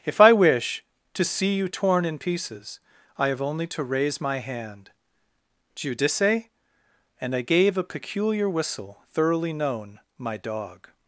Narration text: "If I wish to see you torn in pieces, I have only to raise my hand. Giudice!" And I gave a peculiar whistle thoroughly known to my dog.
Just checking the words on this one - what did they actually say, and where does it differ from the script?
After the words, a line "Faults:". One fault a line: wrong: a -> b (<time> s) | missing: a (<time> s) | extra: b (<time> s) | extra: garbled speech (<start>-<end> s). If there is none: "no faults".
"If I wish to see you torn in pieces, I have only to raise my hand. Giudice!" And I gave a peculiar whistle thoroughly known my dog.
Faults:
missing: to (10.0 s)